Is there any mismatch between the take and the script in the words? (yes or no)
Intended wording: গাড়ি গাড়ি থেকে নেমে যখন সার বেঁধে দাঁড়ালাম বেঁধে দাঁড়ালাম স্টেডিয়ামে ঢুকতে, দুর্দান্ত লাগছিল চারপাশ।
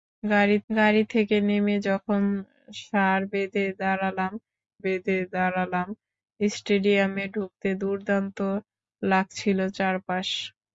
no